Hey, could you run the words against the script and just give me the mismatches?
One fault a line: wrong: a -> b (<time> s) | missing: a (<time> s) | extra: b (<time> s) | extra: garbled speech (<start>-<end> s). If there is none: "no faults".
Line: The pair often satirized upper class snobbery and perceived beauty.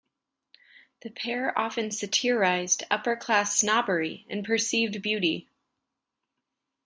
no faults